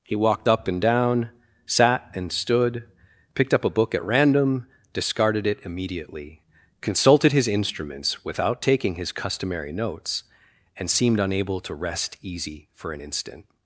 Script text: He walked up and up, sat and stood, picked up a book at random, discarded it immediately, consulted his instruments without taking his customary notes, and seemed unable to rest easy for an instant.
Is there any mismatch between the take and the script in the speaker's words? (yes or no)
yes